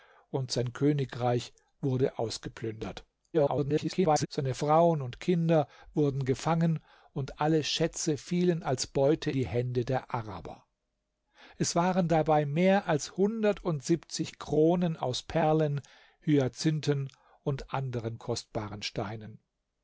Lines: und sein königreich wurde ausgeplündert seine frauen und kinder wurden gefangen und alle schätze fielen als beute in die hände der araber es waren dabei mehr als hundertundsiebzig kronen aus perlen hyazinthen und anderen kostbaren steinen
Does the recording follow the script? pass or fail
fail